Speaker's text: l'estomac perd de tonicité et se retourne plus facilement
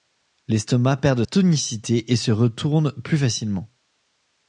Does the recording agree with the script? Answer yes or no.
yes